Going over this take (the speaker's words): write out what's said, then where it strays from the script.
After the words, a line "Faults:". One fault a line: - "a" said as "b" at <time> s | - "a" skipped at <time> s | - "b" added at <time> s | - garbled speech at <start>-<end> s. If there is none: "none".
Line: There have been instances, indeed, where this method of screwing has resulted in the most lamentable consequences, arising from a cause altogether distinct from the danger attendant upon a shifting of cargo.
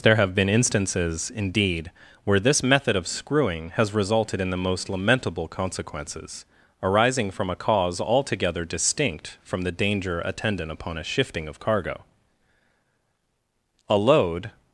There have been instances, indeed, where this method of screwing has resulted in the most lamentable consequences, arising from a cause altogether distinct from the danger attendant upon a shifting of cargo. A load
Faults:
- "A load" added at 13.9 s